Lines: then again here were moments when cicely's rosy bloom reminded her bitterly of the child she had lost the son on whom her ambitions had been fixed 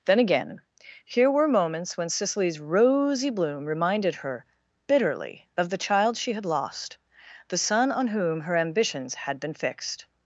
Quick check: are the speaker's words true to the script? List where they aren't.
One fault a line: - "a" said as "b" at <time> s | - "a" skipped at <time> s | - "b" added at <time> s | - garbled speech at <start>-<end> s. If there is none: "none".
none